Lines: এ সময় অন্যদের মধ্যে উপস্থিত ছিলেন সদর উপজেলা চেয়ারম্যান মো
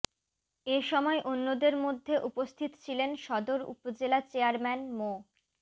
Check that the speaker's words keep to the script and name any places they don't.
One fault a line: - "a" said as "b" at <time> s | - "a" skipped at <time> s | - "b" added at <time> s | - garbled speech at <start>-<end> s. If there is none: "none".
none